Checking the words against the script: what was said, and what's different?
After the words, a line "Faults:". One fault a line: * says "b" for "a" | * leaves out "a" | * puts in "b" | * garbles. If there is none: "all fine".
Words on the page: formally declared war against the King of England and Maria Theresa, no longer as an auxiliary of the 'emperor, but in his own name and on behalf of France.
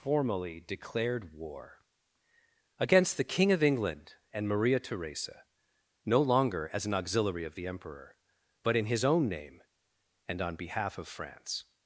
formally declared war against the King of England and Maria Theresa, no longer as an auxiliary of the 'emperor, but in his own name and on behalf of France.
Faults:
all fine